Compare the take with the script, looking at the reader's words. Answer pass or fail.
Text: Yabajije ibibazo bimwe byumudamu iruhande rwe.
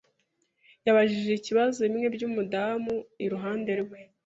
pass